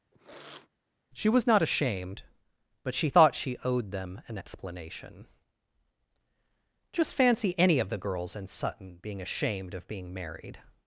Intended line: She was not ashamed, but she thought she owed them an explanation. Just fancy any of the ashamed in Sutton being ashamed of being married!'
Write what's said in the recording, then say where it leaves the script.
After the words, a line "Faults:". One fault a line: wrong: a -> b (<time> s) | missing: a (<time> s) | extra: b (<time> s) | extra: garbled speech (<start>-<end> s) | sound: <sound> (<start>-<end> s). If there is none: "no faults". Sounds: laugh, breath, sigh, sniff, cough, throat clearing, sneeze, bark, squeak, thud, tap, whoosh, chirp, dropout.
She was not ashamed, but she thought she owed them an explanation. Just fancy any of the girls in Sutton being ashamed of being married!'
Faults:
sound: sniff (0.1-0.7 s)
wrong: ashamed -> girls (8.0 s)